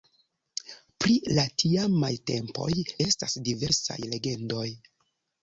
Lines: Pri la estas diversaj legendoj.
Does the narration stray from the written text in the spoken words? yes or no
yes